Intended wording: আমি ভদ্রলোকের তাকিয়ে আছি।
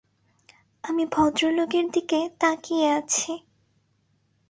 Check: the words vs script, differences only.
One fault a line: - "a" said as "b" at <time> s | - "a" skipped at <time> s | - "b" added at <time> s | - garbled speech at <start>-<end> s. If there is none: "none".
- "দিকে" added at 1.9 s